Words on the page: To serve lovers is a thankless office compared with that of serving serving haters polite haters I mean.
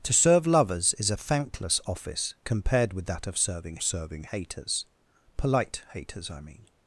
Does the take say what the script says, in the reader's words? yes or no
yes